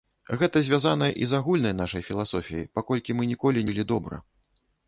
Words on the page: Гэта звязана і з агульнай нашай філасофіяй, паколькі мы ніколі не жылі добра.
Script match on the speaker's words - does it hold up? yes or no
no